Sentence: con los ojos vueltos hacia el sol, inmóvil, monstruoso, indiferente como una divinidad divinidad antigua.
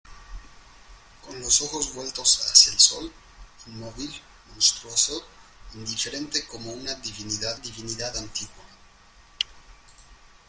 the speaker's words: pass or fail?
pass